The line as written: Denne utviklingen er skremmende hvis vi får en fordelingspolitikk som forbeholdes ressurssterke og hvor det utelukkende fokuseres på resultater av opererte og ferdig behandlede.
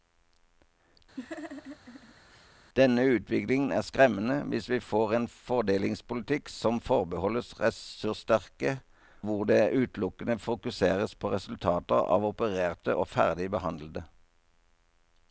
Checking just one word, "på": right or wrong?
right